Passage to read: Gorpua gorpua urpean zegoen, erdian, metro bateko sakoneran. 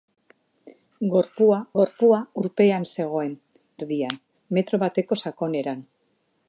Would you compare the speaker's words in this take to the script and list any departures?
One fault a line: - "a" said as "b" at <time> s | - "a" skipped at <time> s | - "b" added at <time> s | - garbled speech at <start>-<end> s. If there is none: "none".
none